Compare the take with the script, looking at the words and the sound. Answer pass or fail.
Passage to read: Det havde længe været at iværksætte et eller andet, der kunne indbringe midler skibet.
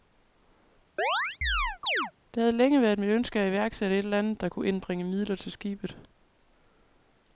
fail